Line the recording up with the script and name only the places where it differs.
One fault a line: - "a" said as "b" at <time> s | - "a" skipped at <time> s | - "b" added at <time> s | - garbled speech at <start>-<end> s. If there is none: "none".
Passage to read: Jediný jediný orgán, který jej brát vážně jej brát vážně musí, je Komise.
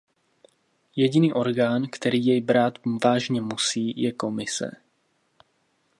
- "jediný" skipped at 1.3 s
- "jej brát vážně" skipped at 3.4 s